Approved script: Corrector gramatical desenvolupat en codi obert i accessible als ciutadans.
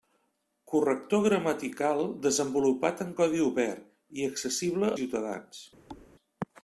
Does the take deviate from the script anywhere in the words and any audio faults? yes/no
yes